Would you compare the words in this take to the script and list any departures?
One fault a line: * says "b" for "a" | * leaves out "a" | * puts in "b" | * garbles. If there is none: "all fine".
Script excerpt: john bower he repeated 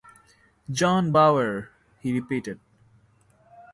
all fine